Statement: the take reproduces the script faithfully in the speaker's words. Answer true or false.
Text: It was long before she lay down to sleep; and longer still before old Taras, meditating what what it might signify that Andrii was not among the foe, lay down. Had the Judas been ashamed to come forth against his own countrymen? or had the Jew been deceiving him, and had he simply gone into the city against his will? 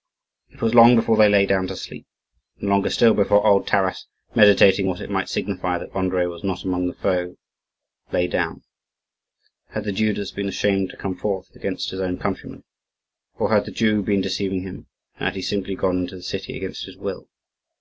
false